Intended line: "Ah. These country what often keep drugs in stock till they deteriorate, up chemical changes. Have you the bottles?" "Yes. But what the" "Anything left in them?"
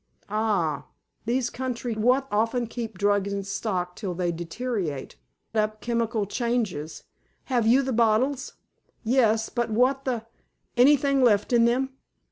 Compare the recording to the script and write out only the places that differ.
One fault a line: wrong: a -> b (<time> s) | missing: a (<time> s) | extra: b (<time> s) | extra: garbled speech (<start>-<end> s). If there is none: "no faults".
no faults